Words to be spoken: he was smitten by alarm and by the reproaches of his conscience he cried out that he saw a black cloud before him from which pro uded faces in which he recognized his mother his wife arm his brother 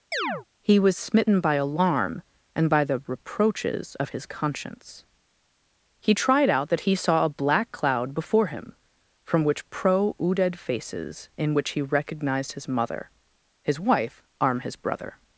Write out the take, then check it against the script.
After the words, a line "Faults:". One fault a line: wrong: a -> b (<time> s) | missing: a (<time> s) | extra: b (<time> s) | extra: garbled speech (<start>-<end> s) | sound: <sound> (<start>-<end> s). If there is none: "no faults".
he was smitten by alarm and by the reproaches of his conscience he tried out that he saw a black cloud before him from which pro uded faces in which he recognized his mother his wife arm his brother
Faults:
sound: chirp (0.1-0.5 s)
wrong: cried -> tried (6.1 s)